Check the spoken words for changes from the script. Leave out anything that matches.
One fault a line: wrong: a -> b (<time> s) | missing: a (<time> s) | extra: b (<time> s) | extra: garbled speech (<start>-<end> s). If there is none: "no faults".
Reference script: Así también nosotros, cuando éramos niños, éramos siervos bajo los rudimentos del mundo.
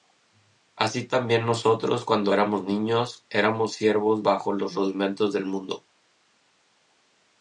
no faults